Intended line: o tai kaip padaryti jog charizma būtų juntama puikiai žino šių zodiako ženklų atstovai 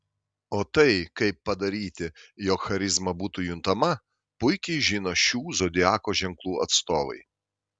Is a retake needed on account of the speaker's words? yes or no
no